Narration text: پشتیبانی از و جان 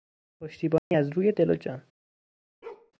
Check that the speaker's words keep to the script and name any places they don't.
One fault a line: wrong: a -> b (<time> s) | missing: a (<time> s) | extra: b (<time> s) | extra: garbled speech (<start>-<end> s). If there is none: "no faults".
extra: روی دل (1.1 s)